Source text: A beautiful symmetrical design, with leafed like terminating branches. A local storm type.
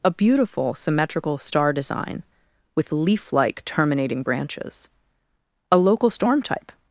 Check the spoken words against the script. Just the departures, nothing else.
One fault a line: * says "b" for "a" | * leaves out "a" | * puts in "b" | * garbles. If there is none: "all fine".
* puts in "star"
* says "leaf" for "leafed"